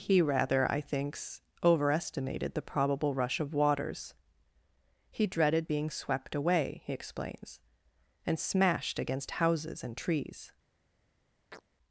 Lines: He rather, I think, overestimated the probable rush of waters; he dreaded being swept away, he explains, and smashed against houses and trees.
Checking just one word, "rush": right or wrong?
right